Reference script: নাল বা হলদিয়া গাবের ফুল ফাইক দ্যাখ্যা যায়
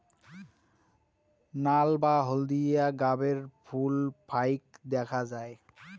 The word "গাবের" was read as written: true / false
true